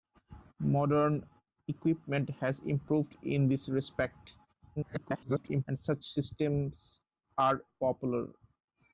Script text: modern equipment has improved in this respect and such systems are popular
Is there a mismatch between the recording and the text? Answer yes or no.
yes